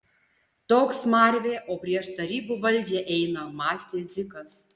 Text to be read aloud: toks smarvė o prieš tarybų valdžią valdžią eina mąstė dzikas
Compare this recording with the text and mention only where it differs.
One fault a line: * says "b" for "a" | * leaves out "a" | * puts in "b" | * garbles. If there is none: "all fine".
* leaves out "valdžią"